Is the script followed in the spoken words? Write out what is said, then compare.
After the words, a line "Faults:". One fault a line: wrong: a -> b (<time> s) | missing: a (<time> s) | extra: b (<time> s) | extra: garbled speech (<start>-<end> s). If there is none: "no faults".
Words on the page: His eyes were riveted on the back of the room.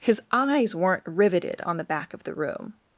His eyes weren't riveted on the back of the room.
Faults:
wrong: were -> weren't (0.7 s)